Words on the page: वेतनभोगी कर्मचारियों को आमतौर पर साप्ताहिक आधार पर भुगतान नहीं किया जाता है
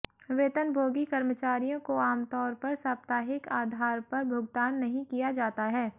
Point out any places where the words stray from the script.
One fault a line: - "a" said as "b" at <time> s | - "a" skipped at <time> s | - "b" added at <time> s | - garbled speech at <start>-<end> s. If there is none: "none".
none